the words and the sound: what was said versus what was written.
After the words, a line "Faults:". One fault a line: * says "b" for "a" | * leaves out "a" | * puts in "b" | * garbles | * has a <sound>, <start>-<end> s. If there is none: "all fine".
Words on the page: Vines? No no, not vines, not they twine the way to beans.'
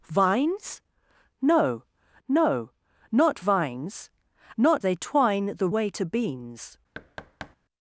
Vines? No no, not vines, not they twine the way to beans.'
Faults:
* has a thud, 6.9-7.6 s